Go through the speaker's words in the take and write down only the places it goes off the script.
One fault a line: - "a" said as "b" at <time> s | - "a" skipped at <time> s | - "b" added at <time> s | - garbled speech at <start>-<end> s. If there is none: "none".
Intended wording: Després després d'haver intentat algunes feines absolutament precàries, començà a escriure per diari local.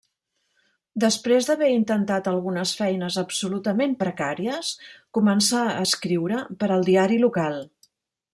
- "després" skipped at 1.5 s
- "al" added at 6.8 s